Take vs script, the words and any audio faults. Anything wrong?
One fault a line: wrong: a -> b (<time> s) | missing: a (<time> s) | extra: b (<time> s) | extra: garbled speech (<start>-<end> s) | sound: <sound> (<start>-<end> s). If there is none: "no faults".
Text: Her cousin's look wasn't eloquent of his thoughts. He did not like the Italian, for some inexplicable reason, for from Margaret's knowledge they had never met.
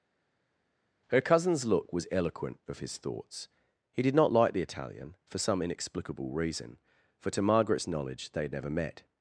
wrong: wasn't -> was (1.9 s)
wrong: from -> to (7.3 s)